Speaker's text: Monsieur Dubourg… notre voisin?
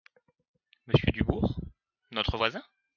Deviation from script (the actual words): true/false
false